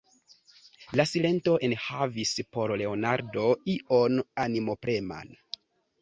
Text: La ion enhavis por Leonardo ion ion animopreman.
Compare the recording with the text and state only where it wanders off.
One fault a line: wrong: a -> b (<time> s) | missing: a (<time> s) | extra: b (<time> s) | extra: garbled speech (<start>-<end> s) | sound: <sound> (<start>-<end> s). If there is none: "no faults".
wrong: ion -> silento (1.1 s)
missing: ion (4.2 s)